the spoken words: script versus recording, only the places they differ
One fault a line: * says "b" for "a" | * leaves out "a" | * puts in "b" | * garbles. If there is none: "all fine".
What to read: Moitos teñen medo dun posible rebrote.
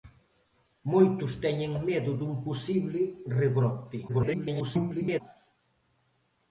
* garbles